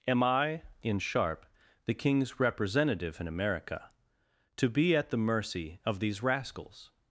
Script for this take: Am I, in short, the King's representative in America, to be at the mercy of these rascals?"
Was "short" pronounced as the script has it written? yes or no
no